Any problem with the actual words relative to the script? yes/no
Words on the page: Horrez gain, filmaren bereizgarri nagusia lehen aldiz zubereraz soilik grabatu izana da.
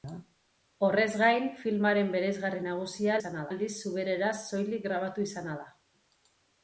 yes